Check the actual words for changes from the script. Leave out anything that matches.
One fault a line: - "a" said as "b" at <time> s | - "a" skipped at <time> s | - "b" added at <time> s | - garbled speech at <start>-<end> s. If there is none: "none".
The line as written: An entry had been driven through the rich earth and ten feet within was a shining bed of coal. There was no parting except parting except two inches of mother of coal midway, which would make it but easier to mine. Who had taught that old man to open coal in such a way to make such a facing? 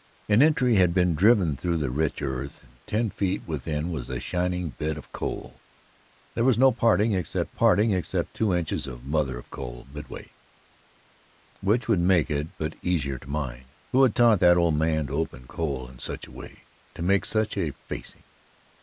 none